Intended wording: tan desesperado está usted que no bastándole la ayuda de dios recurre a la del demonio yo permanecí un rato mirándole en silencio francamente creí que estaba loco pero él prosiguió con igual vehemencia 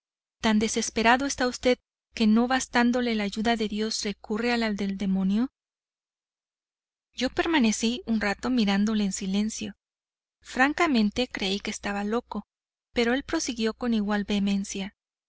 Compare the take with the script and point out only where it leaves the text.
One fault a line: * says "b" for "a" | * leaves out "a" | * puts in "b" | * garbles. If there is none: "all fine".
all fine